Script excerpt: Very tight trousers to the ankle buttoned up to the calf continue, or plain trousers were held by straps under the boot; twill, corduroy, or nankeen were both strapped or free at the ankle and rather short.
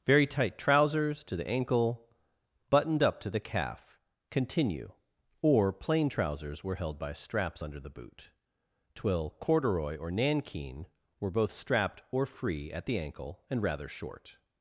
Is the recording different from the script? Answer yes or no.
no